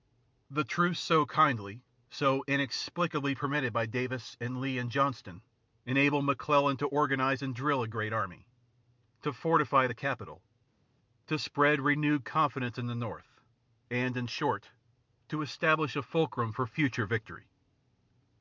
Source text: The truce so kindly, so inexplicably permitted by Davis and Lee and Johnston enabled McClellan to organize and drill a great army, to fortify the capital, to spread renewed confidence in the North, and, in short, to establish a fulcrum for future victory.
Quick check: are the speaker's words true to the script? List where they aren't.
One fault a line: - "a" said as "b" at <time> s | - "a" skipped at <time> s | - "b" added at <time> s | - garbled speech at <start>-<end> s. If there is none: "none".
none